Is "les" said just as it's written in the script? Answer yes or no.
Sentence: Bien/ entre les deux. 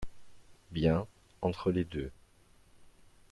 yes